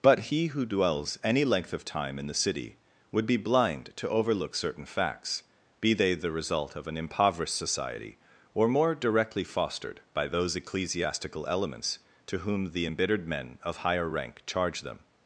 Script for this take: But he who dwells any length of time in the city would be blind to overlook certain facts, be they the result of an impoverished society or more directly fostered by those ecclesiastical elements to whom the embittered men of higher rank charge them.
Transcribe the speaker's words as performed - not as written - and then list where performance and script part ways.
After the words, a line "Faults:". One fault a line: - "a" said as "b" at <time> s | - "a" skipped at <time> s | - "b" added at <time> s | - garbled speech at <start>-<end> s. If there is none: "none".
But he who dwells any length of time in the city would be blind to overlook certain facts, be they the result of an impoverished society or more directly fostered by those ecclesiastical elements to whom the embittered men of higher rank charge them.
Faults:
none